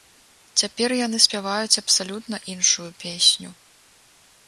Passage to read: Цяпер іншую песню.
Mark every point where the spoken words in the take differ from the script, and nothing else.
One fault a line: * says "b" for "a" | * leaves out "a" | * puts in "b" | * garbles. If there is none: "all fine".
* puts in "яны спяваюць абсалютна"